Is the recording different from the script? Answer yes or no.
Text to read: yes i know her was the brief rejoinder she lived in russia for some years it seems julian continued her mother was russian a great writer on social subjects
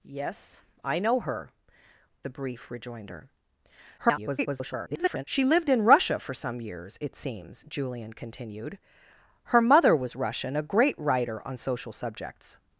yes